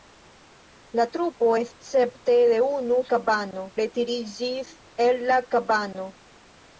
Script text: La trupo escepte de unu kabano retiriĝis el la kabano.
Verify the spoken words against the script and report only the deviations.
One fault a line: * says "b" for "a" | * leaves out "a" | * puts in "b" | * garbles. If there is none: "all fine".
all fine